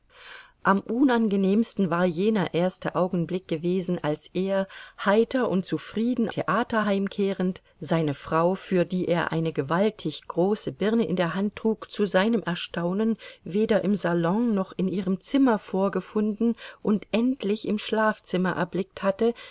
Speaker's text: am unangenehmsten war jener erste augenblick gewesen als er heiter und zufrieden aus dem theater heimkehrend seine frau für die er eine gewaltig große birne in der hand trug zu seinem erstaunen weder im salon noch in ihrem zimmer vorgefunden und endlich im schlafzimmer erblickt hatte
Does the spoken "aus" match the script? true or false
false